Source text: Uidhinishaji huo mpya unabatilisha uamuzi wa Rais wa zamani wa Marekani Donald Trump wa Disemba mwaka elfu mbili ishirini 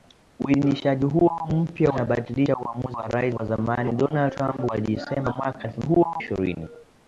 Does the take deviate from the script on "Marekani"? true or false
true